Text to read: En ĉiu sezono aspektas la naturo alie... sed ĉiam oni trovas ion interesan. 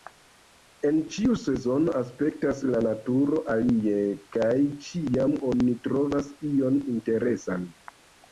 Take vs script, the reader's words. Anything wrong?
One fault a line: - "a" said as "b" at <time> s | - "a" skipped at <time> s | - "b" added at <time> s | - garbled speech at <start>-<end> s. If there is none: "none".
- "sed" said as "kaj" at 4.4 s